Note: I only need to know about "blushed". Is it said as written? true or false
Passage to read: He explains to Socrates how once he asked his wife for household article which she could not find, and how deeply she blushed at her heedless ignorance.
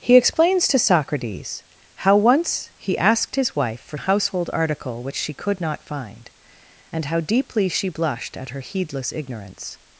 true